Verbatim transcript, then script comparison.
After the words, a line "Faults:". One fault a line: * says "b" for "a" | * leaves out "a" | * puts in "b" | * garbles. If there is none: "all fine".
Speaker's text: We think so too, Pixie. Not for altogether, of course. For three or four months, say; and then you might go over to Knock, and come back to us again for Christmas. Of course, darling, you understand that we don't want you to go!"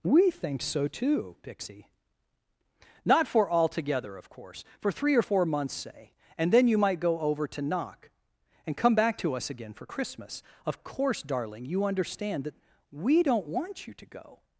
We think so too, Pixie. Not for altogether, of course. For three or four months, say; and then you might go over to Knock, and come back to us again for Christmas. Of course, darling, you understand that we don't want you to go!"
Faults:
all fine